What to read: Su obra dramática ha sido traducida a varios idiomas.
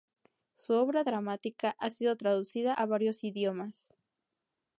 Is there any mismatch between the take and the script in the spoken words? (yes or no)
no